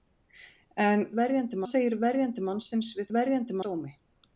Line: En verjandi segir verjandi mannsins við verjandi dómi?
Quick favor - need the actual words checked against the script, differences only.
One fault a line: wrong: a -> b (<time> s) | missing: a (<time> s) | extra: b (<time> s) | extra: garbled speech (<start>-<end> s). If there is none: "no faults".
no faults